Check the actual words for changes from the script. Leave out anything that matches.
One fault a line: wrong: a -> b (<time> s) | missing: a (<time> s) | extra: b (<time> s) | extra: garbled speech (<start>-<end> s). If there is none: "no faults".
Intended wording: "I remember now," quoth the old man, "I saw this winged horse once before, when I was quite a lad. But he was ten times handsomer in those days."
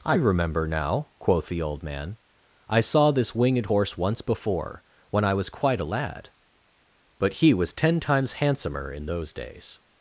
no faults